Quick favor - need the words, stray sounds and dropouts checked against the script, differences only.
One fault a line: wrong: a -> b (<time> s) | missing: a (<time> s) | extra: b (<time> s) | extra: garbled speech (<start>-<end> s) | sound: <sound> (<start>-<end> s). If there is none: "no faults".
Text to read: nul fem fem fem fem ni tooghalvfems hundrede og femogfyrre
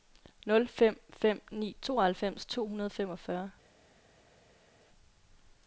missing: fem fem (1.4 s)
extra: to (2.4 s)